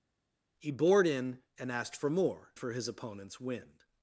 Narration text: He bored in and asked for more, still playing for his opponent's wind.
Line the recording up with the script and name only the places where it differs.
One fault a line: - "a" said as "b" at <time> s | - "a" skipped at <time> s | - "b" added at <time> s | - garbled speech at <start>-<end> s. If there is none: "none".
- "still playing" skipped at 2.5 s